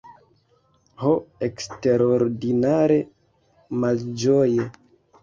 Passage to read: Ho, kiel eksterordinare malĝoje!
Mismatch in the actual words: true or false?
true